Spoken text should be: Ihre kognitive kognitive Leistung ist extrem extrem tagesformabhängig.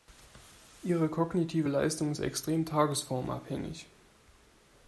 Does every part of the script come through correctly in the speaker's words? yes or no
no